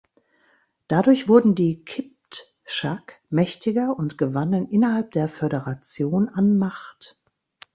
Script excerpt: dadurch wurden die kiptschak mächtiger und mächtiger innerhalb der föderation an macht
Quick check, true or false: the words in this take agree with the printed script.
false